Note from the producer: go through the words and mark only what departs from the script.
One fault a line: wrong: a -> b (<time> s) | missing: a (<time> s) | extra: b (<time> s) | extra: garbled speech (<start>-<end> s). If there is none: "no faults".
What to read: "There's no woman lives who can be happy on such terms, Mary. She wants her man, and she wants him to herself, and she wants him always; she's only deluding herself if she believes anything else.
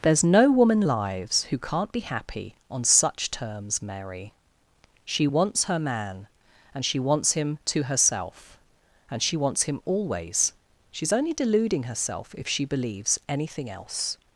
wrong: can -> can't (1.6 s)